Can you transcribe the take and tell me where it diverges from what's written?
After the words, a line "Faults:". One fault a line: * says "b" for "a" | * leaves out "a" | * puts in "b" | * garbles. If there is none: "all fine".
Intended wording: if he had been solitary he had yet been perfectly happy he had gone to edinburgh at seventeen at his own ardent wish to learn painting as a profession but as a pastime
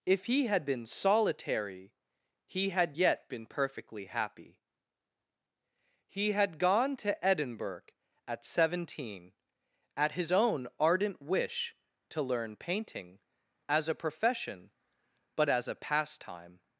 if he had been solitary he had yet been perfectly happy he had gone to edinburgh at seventeen at his own ardent wish to learn painting as a profession but as a pastime
Faults:
all fine